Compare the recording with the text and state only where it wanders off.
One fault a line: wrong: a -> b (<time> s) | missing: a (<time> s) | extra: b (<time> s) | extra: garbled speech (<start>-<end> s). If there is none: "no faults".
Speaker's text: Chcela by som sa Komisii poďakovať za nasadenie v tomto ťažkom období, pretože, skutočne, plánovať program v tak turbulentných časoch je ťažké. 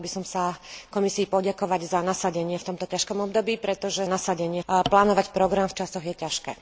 wrong: skutočne -> nasadenie (4.0 s)
missing: tak turbulentných (5.7 s)